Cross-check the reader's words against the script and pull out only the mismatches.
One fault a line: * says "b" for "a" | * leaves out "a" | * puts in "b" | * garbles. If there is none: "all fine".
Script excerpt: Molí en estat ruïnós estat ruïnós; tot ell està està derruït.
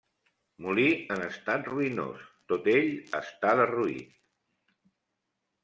* leaves out "estat ruïnós"
* leaves out "està"